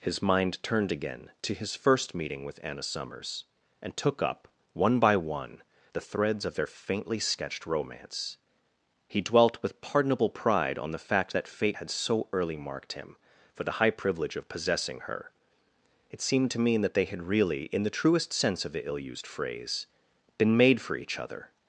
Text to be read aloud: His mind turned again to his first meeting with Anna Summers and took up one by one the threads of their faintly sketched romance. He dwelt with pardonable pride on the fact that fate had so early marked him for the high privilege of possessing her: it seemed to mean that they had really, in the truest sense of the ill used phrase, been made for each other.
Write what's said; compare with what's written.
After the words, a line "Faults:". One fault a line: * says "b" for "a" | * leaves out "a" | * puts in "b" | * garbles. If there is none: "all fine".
His mind turned again to his first meeting with Anna Summers and took up one by one the threads of their faintly sketched romance. He dwelt with pardonable pride on the fact that fate had so early marked him for the high privilege of possessing her: it seemed to mean that they had really, in the truest sense of the ill used phrase, been made for each other.
Faults:
all fine